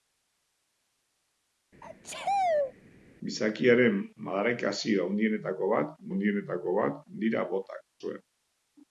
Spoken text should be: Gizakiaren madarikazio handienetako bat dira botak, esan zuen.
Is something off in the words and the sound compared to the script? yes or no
yes